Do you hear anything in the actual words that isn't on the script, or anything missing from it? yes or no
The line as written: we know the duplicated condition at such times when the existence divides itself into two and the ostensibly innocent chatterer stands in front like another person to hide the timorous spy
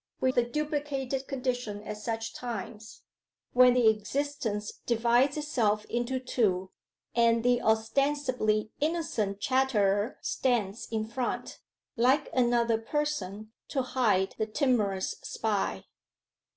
yes